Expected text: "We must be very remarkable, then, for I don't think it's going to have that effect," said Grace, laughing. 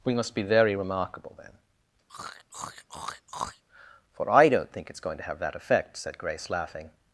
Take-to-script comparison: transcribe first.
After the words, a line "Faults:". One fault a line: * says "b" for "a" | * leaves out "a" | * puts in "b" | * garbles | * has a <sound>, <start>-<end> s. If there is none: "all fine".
"We must be very remarkable, then, for I don't think it's going to have that effect," said Grace, laughing.
Faults:
* has a throat clearing, 2.1-3.6 s